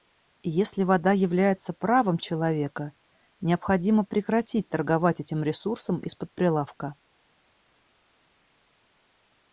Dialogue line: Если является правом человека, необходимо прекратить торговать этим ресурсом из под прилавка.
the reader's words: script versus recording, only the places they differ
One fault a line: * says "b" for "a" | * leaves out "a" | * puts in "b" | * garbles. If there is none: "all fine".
* puts in "вода"